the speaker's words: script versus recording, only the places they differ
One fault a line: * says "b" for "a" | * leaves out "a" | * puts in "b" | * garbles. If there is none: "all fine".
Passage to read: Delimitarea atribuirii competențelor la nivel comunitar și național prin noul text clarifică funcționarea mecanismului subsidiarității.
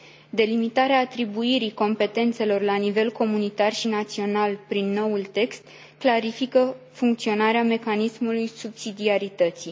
all fine